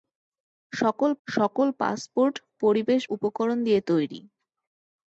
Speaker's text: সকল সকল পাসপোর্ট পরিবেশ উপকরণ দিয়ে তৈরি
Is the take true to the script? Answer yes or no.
yes